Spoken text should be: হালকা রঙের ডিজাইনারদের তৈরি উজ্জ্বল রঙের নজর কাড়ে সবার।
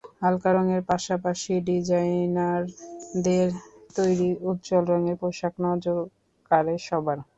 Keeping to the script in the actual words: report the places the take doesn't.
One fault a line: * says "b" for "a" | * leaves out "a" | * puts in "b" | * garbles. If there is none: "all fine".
* puts in "পাশাপাশি"
* puts in "পোশাক"